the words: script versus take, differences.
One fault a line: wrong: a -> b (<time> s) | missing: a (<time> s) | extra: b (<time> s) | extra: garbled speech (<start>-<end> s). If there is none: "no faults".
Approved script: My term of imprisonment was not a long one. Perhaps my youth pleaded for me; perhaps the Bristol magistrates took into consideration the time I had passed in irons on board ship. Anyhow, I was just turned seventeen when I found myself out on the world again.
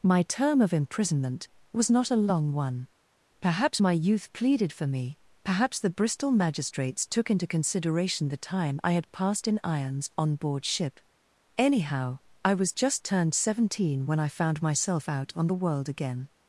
no faults